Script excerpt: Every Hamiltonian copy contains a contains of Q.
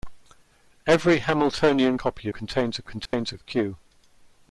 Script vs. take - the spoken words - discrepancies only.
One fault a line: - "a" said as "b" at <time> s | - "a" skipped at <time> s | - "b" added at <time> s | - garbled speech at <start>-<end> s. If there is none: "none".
none